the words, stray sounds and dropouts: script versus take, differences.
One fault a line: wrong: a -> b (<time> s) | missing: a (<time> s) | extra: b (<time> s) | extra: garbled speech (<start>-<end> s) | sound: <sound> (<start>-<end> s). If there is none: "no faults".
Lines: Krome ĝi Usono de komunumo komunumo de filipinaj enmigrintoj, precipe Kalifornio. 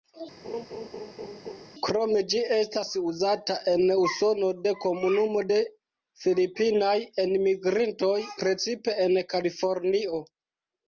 sound: laugh (0.4-1.7 s)
extra: estas uzata en (2.6 s)
missing: komunumo (5.4 s)
extra: en (9.1 s)